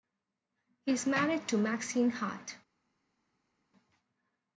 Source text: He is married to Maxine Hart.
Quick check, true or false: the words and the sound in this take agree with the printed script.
true